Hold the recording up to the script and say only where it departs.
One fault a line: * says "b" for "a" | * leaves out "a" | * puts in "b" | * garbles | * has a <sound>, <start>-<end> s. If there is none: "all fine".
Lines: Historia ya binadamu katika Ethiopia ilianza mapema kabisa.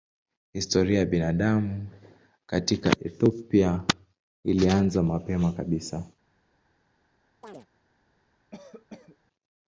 * has a chirp, 7.4-7.7 s
* has a cough, 8.5-9.2 s